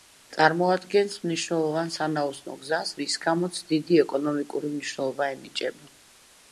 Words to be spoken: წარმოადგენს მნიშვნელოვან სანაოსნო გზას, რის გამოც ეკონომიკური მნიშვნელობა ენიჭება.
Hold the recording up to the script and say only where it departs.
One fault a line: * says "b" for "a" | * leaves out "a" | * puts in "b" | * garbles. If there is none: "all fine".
* puts in "დიდი"